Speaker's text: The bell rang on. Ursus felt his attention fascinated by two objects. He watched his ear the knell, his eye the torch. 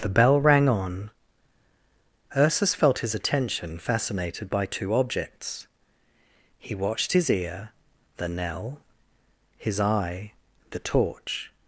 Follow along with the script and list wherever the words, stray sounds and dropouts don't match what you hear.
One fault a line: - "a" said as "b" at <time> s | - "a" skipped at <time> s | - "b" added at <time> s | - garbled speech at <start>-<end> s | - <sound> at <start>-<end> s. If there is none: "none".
none